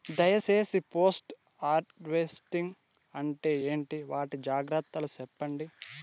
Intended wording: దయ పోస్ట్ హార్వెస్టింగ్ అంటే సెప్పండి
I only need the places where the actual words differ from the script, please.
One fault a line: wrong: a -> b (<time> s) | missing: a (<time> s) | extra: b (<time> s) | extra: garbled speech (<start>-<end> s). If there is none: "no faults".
extra: సేసి (0.4 s)
extra: ఏంటి వాటి జాగ్రత్తలు (3.7 s)